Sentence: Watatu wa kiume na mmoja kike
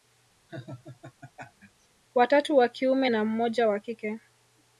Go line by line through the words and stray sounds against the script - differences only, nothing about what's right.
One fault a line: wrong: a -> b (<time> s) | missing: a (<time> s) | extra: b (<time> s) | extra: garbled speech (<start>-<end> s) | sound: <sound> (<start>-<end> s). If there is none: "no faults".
sound: laugh (0.5-1.9 s)
extra: wa (3.7 s)